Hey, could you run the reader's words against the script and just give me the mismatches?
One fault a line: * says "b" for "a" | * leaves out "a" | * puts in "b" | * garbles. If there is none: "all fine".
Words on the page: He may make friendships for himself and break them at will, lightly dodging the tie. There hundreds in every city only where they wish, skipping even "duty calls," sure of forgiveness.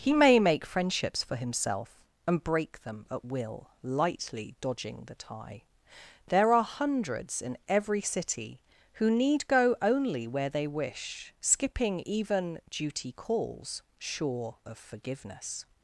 * puts in "are"
* puts in "who need go"